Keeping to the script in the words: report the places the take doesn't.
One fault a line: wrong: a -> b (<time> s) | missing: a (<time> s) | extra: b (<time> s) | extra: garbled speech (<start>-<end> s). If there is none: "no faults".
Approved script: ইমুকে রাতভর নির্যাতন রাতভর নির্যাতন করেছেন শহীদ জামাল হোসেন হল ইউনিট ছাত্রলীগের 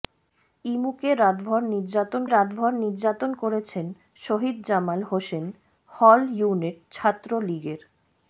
no faults